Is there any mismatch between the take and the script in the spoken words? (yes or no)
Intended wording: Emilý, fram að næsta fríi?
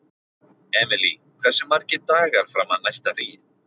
yes